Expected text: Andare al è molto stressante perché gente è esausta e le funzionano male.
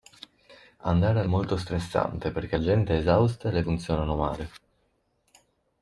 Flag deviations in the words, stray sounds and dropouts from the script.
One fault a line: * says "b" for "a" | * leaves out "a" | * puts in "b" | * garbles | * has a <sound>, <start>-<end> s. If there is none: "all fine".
all fine